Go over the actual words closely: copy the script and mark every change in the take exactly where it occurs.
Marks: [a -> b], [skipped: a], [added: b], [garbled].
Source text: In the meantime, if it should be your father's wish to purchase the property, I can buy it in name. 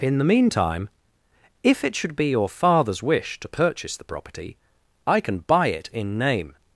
In the meantime, if it should be your father's wish to purchase the property, I can buy it in name.